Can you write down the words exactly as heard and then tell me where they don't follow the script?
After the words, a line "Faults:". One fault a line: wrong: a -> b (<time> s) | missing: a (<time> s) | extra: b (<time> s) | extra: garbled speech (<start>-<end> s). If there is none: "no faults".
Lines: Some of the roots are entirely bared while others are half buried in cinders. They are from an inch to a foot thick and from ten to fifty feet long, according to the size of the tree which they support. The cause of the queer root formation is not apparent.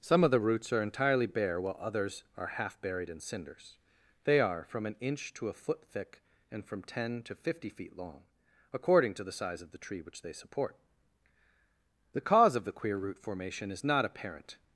Some of the roots are entirely bare while others are half buried in cinders. They are from an inch to a foot thick and from ten to fifty feet long, according to the size of the tree which they support. The cause of the queer root formation is not apparent.
Faults:
wrong: bared -> bare (1.3 s)